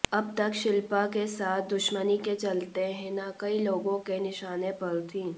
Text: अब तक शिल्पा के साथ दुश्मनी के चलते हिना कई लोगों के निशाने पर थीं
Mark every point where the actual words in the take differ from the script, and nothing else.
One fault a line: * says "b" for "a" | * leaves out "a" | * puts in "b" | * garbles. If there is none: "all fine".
all fine